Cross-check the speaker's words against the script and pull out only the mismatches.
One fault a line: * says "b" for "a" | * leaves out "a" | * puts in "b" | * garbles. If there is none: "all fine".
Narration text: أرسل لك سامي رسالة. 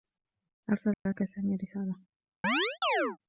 all fine